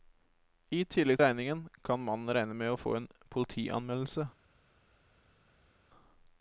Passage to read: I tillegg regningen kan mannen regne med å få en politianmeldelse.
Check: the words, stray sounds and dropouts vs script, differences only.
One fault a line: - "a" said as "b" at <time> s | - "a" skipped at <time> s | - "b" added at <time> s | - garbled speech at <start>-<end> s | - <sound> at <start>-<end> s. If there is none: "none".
none